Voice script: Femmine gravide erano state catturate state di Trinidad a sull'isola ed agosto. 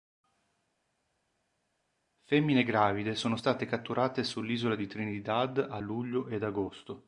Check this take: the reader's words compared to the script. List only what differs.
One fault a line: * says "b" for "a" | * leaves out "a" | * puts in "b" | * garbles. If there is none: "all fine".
* says "sono" for "erano"
* says "sull'isola" for "state"
* says "luglio" for "sull'isola"